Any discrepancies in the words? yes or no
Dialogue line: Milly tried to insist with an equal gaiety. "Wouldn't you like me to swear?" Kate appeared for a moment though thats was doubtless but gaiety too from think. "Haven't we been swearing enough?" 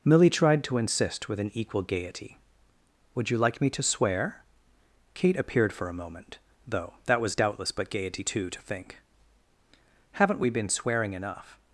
yes